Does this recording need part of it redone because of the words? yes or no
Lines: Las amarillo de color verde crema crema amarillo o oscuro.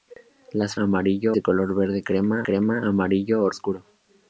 no